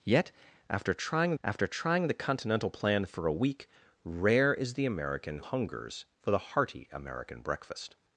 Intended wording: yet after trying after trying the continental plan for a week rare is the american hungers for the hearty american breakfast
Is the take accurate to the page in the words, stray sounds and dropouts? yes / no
yes